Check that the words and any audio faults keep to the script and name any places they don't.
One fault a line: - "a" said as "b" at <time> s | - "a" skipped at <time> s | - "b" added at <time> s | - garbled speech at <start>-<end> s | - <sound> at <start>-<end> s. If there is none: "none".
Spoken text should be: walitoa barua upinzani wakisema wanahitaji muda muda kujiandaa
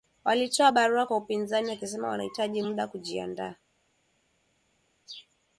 - "kwa" added at 1.0 s
- "muda" skipped at 2.9 s